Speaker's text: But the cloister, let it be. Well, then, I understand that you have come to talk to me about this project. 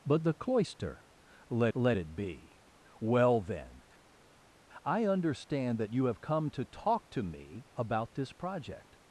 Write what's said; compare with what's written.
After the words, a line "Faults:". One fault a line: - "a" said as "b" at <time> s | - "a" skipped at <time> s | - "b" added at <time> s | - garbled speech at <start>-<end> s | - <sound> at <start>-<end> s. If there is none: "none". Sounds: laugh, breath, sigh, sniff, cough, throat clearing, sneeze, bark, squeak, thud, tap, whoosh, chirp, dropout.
But the cloister, let let it be. Well, then, I understand that you have come to talk to me about this project.
Faults:
- "let" added at 1.7 s